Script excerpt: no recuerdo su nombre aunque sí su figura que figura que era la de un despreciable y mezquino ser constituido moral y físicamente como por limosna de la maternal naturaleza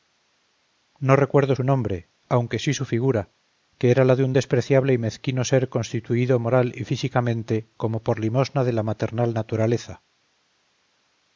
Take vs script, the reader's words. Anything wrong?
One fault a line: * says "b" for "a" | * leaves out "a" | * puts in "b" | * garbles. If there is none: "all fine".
* leaves out "figura que"